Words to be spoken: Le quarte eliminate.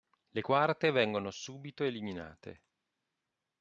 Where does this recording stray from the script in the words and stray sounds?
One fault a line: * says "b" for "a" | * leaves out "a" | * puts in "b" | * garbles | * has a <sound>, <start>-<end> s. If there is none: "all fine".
* puts in "vengono subito"